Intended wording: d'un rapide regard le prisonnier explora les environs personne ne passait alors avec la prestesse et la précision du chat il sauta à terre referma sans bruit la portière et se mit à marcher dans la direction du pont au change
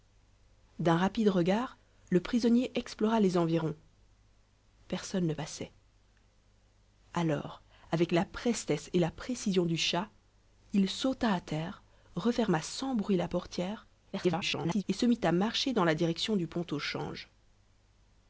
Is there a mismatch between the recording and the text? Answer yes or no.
yes